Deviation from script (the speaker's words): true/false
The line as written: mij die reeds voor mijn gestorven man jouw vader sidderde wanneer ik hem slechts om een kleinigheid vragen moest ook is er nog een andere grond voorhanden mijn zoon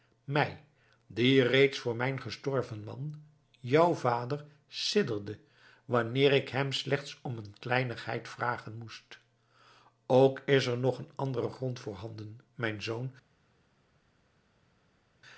false